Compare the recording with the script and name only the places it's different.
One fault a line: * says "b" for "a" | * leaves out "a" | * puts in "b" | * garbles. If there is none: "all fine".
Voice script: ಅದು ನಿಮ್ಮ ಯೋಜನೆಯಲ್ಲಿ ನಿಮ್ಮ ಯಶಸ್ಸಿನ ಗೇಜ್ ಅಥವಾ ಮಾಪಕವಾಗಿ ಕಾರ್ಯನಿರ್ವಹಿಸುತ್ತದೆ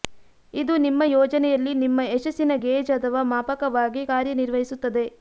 * says "ಇದು" for "ಅದು"